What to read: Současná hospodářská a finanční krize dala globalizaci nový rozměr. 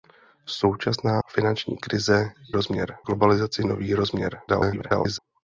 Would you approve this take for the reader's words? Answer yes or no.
no